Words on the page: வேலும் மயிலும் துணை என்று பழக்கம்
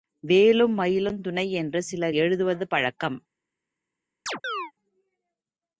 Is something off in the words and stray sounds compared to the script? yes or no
yes